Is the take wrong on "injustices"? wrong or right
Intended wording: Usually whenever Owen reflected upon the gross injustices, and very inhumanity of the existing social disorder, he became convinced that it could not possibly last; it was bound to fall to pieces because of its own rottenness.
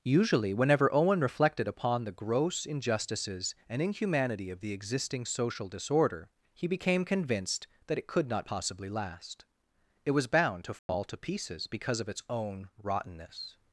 right